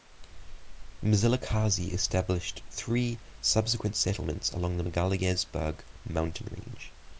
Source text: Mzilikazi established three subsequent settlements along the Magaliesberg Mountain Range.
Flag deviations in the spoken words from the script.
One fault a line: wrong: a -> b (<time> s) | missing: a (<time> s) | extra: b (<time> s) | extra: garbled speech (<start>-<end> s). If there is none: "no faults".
no faults